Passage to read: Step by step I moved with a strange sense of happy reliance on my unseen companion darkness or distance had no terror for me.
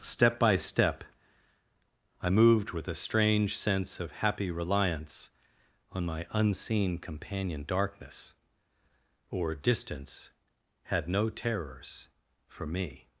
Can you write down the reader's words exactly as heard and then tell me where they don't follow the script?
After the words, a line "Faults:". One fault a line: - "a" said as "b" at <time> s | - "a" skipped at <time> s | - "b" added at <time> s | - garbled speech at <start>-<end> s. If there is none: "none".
Step by step I moved with a strange sense of happy reliance on my unseen companion darkness or distance had no terrors for me.
Faults:
- "terror" said as "terrors" at 11.3 s